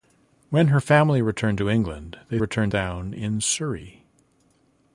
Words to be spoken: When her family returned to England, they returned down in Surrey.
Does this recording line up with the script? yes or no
yes